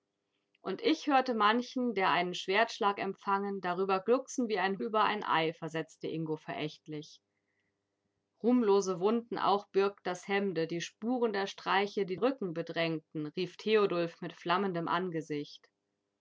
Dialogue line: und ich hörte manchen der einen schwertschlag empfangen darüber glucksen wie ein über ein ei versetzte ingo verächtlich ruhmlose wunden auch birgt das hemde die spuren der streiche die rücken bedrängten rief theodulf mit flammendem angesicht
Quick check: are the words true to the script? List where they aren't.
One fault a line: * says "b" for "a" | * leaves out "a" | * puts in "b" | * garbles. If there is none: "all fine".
all fine